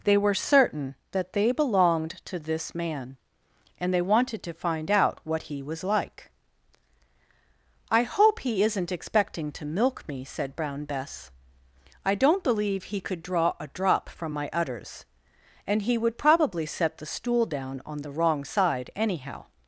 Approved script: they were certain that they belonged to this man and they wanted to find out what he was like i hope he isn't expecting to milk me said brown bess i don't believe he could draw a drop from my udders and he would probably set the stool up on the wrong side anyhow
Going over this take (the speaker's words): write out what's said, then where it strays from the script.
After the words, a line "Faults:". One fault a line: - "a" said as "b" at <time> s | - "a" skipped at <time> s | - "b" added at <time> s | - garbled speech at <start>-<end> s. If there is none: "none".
they were certain that they belonged to this man and they wanted to find out what he was like i hope he isn't expecting to milk me said brown bess i don't believe he could draw a drop from my udders and he would probably set the stool down on the wrong side anyhow
Faults:
- "up" said as "down" at 17.4 s